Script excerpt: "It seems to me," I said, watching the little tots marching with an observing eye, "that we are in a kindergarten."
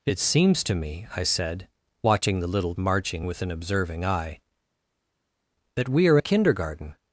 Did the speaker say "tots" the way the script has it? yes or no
no